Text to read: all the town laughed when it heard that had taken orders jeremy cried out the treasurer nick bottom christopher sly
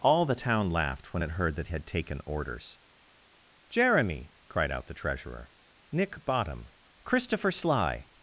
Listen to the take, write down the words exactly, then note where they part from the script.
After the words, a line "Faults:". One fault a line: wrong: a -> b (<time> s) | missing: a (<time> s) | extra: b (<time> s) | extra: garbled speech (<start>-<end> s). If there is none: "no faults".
all the town laughed when it heard that had taken orders jeremy cried out the treasurer nick bottom christopher sly
Faults:
no faults